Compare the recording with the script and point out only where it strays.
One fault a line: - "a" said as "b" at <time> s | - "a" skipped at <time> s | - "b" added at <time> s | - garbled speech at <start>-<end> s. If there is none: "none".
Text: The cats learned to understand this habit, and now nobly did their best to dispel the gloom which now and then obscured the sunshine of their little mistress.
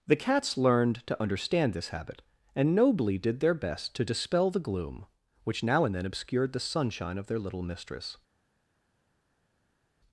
- "now" skipped at 2.8 s